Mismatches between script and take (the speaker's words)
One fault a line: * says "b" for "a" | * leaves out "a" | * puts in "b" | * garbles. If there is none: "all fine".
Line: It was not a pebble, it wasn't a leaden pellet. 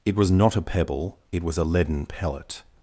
* says "was" for "wasn't"